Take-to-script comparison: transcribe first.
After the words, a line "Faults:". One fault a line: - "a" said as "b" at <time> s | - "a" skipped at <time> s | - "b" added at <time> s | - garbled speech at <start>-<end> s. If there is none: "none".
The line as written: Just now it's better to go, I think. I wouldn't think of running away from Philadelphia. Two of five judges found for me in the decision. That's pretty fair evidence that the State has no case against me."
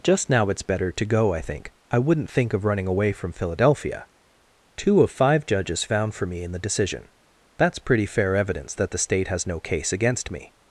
Just now it's better to go, I think. I wouldn't think of running away from Philadelphia. Two of five judges found for me in the decision. That's pretty fair evidence that the State has no case against me."
Faults:
none